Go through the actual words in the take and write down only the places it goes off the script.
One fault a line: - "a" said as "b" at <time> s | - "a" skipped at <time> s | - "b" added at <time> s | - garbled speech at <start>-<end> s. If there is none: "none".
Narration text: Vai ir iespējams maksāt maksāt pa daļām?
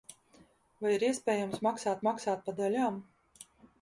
none